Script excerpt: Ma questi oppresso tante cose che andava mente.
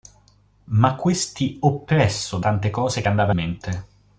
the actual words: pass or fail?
pass